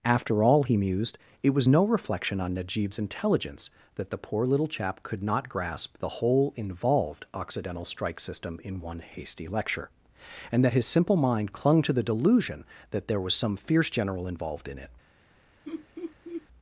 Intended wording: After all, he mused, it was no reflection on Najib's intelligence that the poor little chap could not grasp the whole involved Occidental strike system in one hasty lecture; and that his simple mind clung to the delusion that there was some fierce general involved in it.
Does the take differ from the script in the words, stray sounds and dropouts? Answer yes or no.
yes